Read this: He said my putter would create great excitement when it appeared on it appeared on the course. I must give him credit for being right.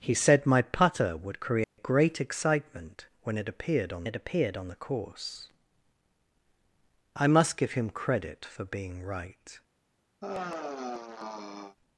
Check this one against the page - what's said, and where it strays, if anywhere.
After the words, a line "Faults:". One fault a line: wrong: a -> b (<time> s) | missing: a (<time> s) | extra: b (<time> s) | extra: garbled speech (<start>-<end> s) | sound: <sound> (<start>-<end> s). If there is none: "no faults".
He said my putter would create great excitement when it appeared on it appeared on the course. I must give him credit for being right.
Faults:
sound: dropout (1.6-1.8 s)
sound: sigh (10.2-11.8 s)